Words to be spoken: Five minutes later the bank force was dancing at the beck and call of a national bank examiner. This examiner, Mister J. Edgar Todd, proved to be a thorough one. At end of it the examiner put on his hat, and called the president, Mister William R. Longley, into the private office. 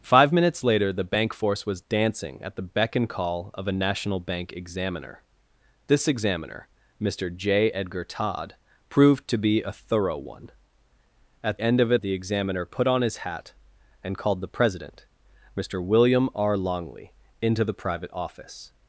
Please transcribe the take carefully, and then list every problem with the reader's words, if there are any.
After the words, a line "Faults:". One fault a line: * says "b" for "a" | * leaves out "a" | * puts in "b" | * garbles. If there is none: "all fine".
Five minutes later the bank force was dancing at the beck and call of a national bank examiner. This examiner, Mister J. Edgar Todd, proved to be a thorough one. At end of it the examiner put on his hat, and called the president, Mister William R. Longley, into the private office.
Faults:
all fine